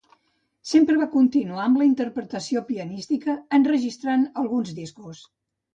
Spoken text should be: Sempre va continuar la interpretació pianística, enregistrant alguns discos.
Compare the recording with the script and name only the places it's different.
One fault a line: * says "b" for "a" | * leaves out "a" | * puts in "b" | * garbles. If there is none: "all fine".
* puts in "amb"